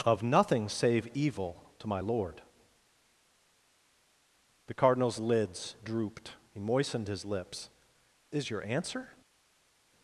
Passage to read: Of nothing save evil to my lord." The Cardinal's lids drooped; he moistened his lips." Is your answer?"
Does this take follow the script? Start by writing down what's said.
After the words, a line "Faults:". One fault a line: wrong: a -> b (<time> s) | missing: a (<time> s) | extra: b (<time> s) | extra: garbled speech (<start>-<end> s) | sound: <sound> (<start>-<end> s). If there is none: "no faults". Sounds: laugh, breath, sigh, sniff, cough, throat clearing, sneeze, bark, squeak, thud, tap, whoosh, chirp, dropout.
Of nothing save evil to my lord." The Cardinal's lids drooped; he moistened his lips." Is your answer?"
Faults:
no faults